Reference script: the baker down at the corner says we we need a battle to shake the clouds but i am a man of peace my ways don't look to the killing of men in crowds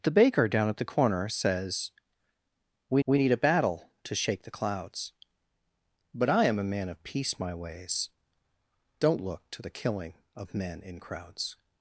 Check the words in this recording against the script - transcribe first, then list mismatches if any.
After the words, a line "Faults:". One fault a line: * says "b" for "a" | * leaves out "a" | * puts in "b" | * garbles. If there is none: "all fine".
the baker down at the corner says we we need a battle to shake the clouds but i am a man of peace my ways don't look to the killing of men in crowds
Faults:
all fine